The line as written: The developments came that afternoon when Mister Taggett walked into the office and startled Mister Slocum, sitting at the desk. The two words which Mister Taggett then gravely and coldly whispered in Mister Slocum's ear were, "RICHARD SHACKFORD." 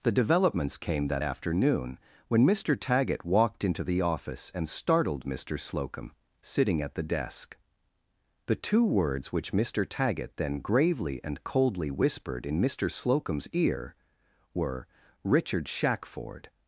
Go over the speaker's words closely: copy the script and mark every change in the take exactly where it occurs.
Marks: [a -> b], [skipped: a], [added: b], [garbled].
The developments came that afternoon when Mister Taggett walked into the office and startled Mister Slocum, sitting at the desk. The two words which Mister Taggett then gravely and coldly whispered in Mister Slocum's ear were, "RICHARD SHACKFORD."